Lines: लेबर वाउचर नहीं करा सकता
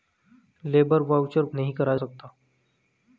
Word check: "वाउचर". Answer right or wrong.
right